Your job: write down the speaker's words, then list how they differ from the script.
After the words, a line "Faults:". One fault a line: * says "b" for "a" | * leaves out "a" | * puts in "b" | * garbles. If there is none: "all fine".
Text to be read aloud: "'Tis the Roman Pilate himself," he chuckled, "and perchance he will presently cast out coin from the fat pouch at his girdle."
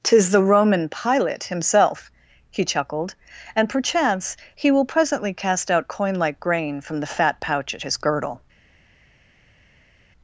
"'Tis the Roman Pilate himself," he chuckled, "and perchance he will presently cast out coin like grain from the fat pouch at his girdle."
Faults:
* puts in "like grain"